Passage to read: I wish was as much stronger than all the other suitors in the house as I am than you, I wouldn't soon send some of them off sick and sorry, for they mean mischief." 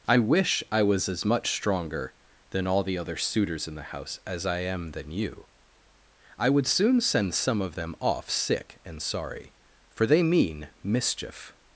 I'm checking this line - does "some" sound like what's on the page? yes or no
yes